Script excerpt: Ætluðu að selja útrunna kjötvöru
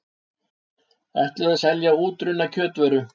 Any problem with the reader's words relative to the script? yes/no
no